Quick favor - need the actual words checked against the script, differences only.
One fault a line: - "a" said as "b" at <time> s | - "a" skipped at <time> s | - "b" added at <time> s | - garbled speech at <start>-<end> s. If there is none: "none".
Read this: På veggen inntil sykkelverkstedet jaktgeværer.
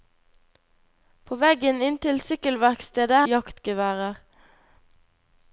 none